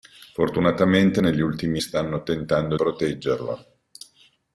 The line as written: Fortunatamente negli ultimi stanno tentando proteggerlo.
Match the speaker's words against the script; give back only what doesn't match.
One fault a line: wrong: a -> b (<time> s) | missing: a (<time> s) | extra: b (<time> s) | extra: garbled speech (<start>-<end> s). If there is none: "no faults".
no faults